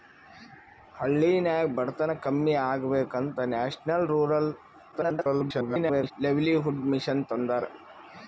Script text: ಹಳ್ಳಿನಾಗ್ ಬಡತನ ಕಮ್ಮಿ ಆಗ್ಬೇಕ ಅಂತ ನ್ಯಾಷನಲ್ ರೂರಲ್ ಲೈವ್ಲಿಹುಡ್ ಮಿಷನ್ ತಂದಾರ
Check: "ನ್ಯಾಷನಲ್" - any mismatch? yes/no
no